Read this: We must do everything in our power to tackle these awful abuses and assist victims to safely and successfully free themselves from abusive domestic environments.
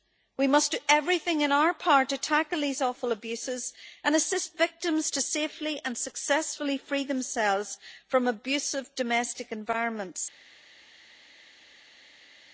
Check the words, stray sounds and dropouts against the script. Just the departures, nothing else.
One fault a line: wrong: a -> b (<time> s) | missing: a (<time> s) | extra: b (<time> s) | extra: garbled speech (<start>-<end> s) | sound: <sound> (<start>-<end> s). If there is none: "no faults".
no faults